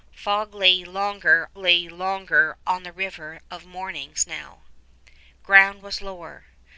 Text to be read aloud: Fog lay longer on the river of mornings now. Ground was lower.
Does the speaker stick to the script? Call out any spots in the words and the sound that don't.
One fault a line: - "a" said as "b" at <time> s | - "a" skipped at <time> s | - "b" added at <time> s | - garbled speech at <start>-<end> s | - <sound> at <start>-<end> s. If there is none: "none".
- "lay longer" added at 1.6 s